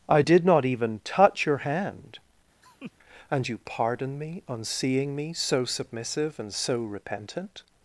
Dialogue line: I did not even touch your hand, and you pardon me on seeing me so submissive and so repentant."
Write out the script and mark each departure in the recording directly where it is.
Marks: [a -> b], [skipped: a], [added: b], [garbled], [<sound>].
I did not even touch your hand, [laugh] and you pardon me on seeing me so submissive and so repentant."